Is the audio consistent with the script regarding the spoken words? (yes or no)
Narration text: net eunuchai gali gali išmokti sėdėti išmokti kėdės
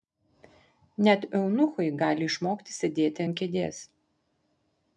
no